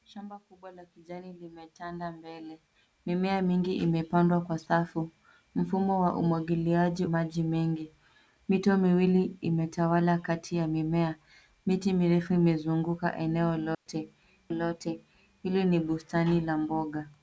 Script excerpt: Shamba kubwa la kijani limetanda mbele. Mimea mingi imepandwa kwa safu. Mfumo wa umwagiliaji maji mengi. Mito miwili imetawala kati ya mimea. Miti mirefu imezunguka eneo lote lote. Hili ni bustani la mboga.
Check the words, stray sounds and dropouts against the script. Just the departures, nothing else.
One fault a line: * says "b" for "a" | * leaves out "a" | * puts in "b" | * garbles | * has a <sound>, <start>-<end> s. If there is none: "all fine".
* has a dropout, 13.7-13.9 s